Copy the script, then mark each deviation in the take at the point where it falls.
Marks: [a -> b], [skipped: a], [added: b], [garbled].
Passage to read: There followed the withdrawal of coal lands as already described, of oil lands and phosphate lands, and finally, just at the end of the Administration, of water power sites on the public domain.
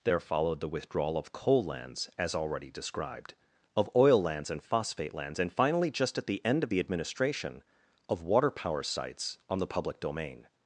There followed the withdrawal of coal lands as already described, of oil lands and phosphate lands, and finally, just at the end of the Administration, of water power sites on the public domain.